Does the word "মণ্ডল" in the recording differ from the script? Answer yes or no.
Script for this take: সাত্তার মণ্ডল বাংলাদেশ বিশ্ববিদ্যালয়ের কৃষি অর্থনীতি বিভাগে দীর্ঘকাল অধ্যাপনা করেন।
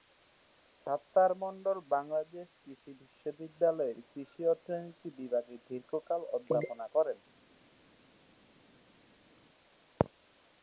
no